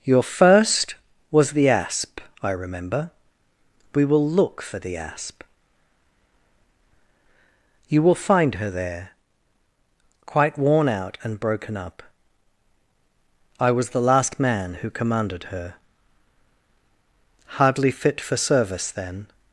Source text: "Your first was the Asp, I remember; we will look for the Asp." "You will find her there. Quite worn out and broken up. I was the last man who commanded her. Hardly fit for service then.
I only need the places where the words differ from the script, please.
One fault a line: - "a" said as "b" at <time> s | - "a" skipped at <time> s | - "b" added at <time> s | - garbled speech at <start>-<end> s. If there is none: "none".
none